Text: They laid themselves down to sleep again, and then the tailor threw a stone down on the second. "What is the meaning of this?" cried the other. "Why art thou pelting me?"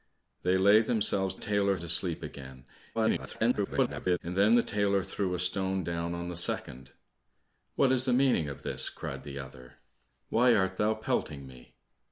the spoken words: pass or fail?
fail